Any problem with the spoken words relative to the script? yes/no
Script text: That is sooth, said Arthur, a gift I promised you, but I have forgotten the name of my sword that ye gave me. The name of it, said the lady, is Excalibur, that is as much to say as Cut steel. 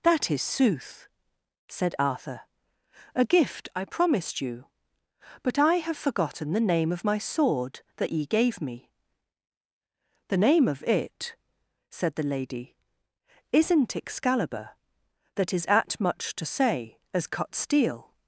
yes